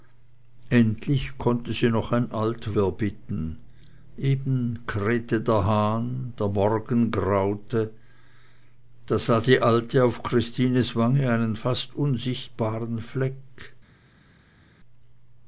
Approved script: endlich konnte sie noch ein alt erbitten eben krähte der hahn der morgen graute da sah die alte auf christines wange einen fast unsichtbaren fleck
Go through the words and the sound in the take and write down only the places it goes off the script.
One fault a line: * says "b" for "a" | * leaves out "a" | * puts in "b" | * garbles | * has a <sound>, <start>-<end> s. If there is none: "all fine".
all fine